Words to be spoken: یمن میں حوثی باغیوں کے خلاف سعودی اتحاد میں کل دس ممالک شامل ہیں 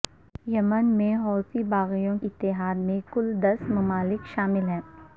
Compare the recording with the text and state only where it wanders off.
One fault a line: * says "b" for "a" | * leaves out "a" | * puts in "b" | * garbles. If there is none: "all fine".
* leaves out "کے خلاف سعودی"